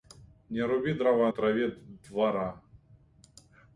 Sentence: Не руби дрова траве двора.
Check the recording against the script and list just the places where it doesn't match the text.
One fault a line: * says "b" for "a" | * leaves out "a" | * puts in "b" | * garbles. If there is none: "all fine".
all fine